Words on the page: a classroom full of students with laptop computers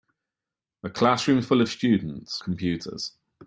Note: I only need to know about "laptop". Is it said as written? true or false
false